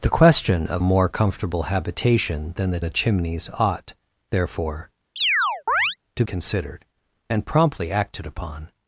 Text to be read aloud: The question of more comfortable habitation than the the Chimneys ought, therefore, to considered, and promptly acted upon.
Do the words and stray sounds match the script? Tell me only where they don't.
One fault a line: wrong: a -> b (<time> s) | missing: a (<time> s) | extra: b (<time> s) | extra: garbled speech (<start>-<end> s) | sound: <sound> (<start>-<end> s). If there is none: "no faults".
sound: chirp (5.2-6.0 s)